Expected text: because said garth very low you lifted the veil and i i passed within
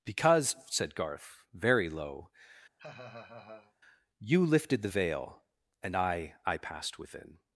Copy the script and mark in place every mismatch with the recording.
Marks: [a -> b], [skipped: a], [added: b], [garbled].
because said garth very low you lifted the veil and i i passed within